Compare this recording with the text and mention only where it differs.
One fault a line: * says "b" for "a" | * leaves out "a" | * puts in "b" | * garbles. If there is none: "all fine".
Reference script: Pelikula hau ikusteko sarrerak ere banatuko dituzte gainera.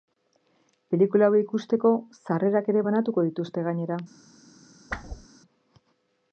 all fine